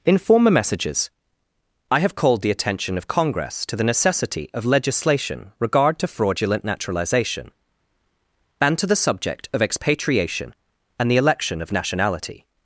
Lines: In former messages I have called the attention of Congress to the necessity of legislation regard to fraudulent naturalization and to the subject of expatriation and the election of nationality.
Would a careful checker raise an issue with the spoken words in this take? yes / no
no